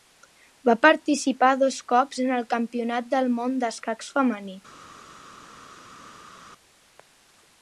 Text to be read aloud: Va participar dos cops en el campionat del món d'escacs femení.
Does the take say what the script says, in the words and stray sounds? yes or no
yes